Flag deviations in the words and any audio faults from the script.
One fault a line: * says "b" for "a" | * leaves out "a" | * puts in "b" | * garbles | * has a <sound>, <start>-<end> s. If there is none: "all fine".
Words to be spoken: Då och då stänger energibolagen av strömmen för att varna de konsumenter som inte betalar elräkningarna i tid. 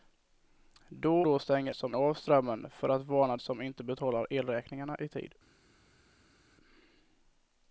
* leaves out "och"
* says "som" for "energibolagen"
* leaves out "de konsumenter"